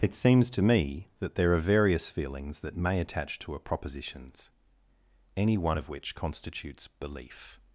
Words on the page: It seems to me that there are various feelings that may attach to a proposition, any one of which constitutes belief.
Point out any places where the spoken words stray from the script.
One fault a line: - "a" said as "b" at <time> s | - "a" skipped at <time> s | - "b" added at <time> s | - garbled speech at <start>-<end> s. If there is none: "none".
- "proposition" said as "propositions" at 3.6 s